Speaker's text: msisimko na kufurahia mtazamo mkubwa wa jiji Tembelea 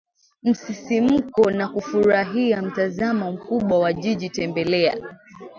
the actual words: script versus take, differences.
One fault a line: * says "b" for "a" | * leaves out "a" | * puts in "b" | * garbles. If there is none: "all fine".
all fine